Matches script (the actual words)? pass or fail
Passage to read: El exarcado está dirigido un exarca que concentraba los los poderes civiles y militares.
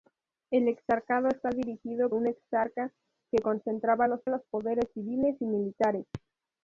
pass